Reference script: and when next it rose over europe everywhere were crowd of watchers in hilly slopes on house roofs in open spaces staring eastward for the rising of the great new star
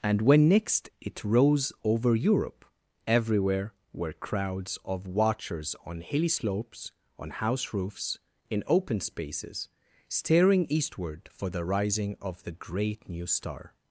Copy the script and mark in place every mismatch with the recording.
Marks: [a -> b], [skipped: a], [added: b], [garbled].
and when next it rose over europe everywhere were [crowd -> crowds] of watchers [in -> on] hilly slopes on house roofs in open spaces staring eastward for the rising of the great new star